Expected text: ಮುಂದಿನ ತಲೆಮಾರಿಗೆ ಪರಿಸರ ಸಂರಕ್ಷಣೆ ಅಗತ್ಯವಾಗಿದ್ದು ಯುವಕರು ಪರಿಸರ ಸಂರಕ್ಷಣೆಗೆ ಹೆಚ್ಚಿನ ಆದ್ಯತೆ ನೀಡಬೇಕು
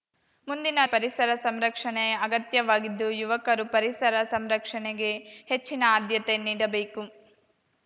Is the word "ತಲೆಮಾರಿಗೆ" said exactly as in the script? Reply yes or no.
no